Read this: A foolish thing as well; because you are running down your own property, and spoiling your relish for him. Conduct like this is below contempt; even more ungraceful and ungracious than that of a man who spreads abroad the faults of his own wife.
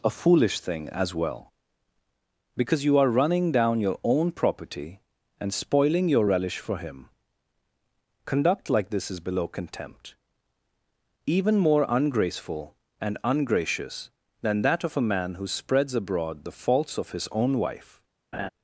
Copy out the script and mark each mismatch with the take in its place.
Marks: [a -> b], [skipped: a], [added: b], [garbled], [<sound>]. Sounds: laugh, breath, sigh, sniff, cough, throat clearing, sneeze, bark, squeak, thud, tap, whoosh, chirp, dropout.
A foolish thing as well; because you are running down your own property, and spoiling your relish for him. Conduct like this is below contempt; even more ungraceful and ungracious than that of a man who spreads abroad the faults of his own wife. [laugh]